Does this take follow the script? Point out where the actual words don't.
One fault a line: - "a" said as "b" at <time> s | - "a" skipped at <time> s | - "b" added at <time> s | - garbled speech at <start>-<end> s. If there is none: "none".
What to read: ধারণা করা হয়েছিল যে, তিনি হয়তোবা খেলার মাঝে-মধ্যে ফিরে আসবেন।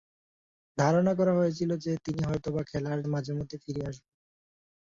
none